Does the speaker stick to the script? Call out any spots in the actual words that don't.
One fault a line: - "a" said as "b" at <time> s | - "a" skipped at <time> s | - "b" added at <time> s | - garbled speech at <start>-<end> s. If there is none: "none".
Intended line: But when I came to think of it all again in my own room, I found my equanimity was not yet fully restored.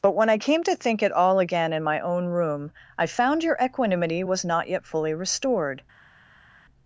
- "of" skipped at 1.0 s
- "my" said as "your" at 3.4 s